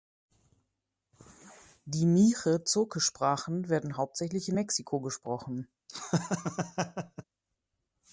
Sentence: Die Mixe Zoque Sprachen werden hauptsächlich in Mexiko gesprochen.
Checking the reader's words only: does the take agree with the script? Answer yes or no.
yes